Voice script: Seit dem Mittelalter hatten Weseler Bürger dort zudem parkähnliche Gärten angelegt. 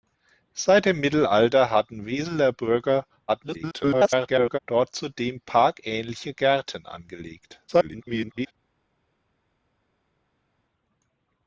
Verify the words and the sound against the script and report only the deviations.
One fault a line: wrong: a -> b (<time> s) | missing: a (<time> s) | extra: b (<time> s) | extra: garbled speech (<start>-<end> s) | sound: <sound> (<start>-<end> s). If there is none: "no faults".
extra: garbled speech (3.3-4.6 s)
extra: garbled speech (7.7-8.5 s)